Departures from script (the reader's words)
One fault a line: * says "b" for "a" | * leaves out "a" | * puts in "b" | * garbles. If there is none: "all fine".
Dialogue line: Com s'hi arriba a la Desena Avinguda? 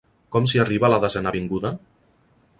all fine